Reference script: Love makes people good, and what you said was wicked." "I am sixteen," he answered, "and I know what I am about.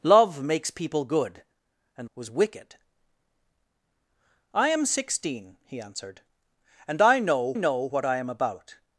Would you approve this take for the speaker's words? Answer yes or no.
no